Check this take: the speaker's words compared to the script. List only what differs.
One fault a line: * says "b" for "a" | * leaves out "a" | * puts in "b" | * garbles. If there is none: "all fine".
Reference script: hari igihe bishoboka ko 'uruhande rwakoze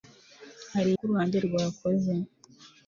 * leaves out "igihe bishoboka"